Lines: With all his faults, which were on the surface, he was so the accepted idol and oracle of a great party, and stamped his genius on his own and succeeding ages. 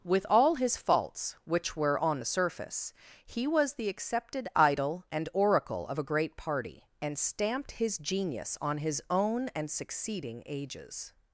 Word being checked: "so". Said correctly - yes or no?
no